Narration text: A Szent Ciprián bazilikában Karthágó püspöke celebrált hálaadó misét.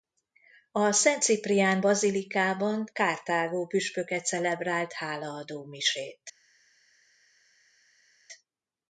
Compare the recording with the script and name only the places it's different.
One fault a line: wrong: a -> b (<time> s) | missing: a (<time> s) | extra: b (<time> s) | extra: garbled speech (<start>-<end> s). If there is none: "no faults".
no faults